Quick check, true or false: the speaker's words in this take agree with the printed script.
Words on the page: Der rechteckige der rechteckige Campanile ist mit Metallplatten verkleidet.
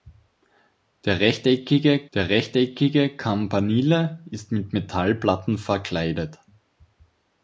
true